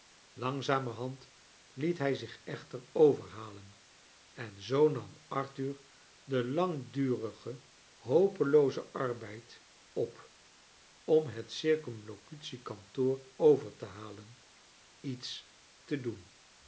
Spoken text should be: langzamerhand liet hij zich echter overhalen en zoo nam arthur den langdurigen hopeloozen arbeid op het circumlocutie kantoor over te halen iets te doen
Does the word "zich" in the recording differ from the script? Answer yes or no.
no